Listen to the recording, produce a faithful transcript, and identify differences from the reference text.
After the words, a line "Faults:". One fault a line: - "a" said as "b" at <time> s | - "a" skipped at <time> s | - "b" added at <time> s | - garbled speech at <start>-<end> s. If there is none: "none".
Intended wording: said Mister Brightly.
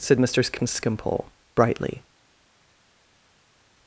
said Mister Skimpole, brightly.
Faults:
- "Skimpole" added at 0.4 s